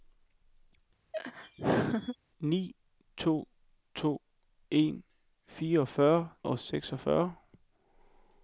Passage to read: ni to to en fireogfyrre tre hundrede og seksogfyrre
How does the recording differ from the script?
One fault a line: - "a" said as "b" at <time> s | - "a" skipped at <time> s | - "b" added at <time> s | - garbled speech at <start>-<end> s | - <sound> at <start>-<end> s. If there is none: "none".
- laugh at 1.1-2.2 s
- "tre hundrede" skipped at 6.3 s